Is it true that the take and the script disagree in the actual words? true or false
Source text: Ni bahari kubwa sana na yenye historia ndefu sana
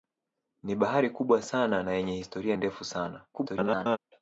true